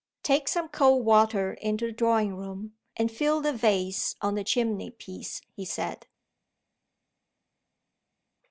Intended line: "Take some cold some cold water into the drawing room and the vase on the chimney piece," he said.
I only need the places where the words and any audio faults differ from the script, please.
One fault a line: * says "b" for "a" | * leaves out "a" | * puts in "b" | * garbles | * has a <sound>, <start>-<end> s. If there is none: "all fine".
* leaves out "some cold"
* puts in "fill"